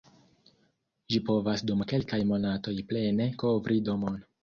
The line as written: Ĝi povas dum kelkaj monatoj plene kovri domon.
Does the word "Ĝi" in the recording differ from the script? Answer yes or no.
no